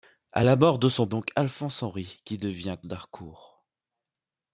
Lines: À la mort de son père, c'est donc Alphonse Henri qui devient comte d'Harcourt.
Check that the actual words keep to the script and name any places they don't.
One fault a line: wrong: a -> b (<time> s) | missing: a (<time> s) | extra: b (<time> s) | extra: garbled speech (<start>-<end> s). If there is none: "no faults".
missing: père c'est (1.1 s)
missing: comte (2.8 s)